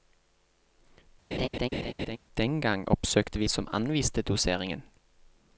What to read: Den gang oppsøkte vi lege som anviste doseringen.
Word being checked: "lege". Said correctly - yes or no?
no